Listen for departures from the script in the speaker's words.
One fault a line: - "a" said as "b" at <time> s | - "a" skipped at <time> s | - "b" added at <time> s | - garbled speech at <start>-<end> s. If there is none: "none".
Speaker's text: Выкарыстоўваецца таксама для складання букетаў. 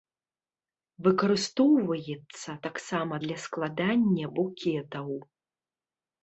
none